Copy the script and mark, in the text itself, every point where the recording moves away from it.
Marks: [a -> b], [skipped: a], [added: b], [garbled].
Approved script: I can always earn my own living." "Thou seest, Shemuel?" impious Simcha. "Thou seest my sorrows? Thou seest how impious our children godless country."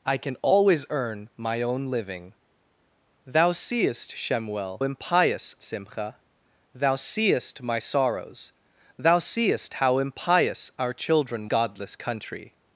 I can always earn my own living." "Thou seest, Shemuel?" impious Simcha. "Thou seest my sorrows? Thou seest how impious our children godless country."